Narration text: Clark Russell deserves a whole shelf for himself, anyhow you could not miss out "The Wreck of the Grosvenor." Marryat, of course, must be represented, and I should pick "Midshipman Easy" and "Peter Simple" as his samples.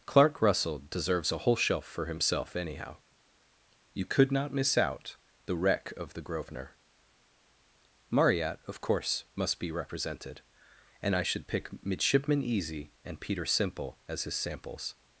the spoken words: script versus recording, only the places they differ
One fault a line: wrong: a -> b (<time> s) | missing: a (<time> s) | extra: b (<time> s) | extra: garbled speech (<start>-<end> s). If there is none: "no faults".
no faults